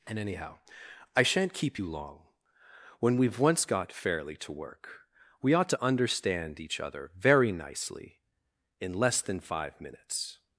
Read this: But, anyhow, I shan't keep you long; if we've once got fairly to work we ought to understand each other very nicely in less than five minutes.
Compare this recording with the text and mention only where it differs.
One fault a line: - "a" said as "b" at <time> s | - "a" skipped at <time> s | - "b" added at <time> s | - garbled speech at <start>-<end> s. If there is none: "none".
- "But" said as "And" at 0.1 s
- "if" said as "when" at 3.0 s